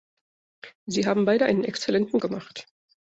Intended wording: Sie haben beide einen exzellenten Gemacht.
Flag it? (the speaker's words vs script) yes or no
no